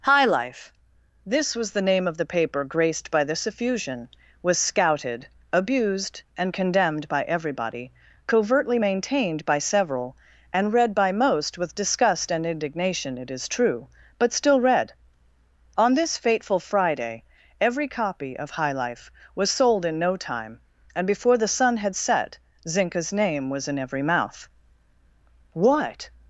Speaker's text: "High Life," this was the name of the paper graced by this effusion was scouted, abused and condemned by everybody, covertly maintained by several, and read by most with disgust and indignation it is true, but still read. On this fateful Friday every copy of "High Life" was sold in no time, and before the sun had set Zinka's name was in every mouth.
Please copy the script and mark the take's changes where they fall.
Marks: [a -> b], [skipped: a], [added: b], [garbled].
"High Life," this was the name of the paper graced by this effusion was scouted, abused and condemned by everybody, covertly maintained by several, and read by most with disgust and indignation it is true, but still read. On this fateful Friday every copy of "High Life" was sold in no time, and before the sun had set Zinka's name was in every mouth. [added: What]